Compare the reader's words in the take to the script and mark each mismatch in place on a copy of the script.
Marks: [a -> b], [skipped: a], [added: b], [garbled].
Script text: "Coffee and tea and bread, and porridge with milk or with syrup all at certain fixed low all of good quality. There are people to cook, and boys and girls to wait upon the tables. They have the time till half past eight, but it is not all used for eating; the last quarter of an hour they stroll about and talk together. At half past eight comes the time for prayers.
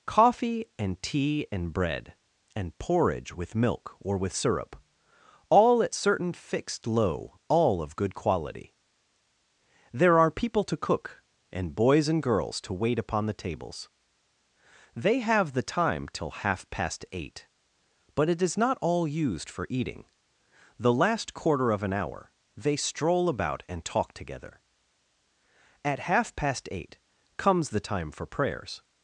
"Coffee and tea and bread, and porridge with milk or with syrup all at certain fixed low all of good quality. There are people to cook, and boys and girls to wait upon the tables. They have the time till half past eight, but it is not all used for eating; the last quarter of an hour they stroll about and talk together. At half past eight comes the time for prayers.